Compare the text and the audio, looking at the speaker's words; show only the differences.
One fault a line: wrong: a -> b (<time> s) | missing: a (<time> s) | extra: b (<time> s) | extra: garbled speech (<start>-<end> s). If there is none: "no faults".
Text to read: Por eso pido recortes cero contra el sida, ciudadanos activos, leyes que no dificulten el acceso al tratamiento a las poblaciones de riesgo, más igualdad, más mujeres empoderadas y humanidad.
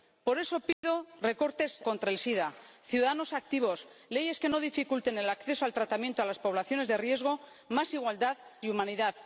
missing: cero (1.8 s)
missing: más mujeres empoderadas (8.4 s)